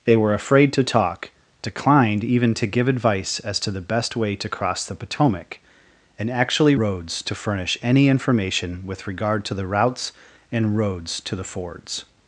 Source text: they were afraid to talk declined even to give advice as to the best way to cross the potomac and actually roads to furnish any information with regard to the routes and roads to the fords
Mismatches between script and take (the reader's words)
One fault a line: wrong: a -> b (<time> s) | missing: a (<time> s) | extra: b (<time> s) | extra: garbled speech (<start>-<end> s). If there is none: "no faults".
no faults